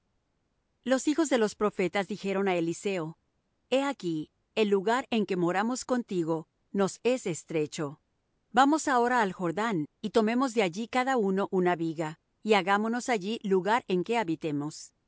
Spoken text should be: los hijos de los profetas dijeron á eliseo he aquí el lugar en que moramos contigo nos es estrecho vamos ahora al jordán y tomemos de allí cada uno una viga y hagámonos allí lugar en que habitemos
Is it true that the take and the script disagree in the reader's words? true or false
false